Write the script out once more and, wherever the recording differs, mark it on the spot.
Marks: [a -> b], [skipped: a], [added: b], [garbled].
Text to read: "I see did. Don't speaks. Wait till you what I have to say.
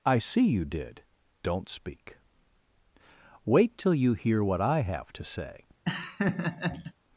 "I see [added: you] did. Don't [speaks. -> speak] Wait till you [added: hear] what I have to say.